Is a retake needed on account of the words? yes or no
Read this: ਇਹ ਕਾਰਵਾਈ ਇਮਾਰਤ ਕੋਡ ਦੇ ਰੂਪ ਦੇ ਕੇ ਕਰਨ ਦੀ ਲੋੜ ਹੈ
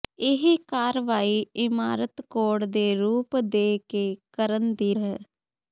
yes